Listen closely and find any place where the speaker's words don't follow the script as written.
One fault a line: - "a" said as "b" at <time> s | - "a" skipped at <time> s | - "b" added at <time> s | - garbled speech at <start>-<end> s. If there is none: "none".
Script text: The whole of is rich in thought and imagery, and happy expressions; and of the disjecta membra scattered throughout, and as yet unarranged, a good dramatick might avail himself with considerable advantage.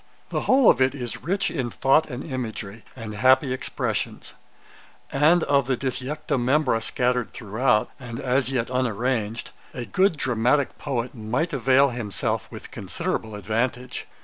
- "it" added at 0.8 s
- "poet" added at 10.8 s